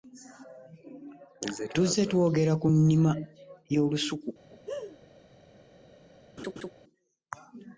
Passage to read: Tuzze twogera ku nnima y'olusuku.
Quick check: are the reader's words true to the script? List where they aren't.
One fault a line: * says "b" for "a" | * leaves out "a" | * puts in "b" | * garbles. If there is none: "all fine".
all fine